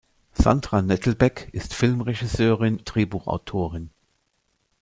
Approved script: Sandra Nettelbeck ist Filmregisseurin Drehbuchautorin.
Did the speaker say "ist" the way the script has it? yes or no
yes